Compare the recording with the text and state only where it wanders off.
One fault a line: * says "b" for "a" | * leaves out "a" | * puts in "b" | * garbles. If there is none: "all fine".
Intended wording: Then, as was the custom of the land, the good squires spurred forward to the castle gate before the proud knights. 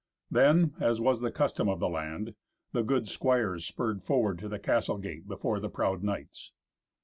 all fine